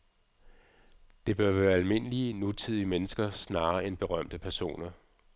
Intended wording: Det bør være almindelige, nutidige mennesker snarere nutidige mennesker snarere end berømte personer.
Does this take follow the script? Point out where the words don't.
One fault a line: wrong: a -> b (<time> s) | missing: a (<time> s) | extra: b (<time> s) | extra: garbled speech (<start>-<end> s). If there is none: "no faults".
missing: nutidige mennesker snarere (3.9 s)